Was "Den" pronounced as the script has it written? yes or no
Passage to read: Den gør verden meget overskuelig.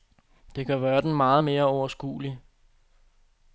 no